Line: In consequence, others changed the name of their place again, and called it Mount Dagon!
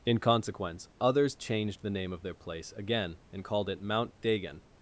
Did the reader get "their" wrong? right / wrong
right